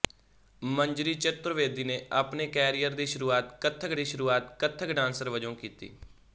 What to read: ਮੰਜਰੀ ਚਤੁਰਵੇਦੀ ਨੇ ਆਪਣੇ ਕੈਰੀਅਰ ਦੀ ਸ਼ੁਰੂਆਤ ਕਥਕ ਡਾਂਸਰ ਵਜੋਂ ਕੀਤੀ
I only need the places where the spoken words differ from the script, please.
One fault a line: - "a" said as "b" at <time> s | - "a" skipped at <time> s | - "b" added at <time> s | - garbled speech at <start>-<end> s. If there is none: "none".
- "ਦੀ ਸ਼ੁਰੂਆਤ ਕਥਕ" added at 3.9 s